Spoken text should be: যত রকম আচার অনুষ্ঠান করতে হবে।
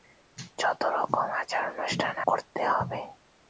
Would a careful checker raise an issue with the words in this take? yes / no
no